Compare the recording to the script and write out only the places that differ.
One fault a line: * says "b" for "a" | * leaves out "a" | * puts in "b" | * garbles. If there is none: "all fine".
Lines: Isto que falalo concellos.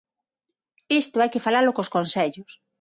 * puts in "hai"
* puts in "cos"